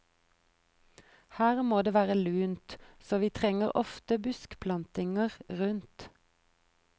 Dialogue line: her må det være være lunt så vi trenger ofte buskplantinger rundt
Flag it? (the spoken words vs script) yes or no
yes